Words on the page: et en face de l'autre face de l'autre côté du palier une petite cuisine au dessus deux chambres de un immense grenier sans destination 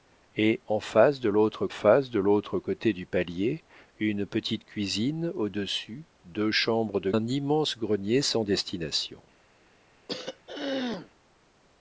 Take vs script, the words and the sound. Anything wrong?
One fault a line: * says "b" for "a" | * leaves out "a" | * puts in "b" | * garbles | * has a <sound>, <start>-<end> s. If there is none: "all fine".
* has a throat clearing, 10.1-11.1 s